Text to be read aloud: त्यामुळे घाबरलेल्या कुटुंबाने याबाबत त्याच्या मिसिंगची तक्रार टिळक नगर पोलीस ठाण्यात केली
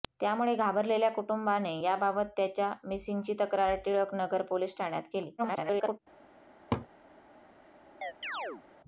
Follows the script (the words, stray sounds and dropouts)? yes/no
no